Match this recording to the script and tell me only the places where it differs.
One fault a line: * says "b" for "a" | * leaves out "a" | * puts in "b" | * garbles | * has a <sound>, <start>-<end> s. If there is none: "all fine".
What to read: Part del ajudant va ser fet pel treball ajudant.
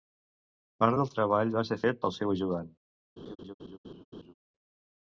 * says "treball" for "ajudant"
* says "seu" for "treball"
* has a laugh, 3.2-4.3 s